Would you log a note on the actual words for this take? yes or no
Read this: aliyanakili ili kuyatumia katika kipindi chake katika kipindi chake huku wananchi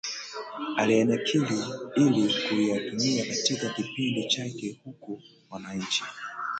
yes